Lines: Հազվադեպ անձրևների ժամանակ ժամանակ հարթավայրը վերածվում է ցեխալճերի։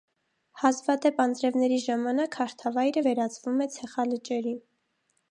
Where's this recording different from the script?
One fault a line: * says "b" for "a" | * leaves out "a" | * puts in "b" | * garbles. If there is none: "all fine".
* leaves out "ժամանակ"